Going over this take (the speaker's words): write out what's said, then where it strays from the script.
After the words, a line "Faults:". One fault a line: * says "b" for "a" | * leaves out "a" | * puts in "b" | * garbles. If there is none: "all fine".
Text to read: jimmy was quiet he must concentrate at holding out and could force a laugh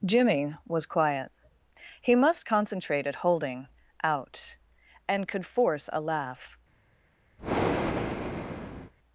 jimmy was quiet he must concentrate at holding out and could force a laugh
Faults:
all fine